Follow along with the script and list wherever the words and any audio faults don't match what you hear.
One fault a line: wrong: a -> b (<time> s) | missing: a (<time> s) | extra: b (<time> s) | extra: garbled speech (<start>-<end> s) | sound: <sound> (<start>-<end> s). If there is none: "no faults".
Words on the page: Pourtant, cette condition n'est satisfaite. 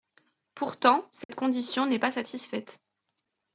sound: dropout (1.2-1.3 s)
extra: pas (2.0 s)